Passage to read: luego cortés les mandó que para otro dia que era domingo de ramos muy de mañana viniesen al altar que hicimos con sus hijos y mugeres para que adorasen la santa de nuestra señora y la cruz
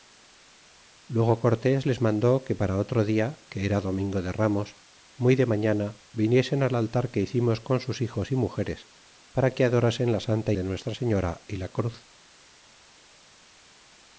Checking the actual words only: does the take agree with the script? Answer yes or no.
yes